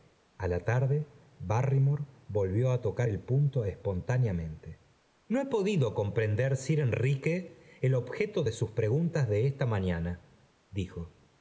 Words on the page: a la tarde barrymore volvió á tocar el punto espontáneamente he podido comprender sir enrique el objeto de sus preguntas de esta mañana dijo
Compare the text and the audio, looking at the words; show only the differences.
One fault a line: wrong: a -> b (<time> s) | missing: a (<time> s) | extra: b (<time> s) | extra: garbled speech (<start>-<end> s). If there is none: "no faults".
extra: no (5.3 s)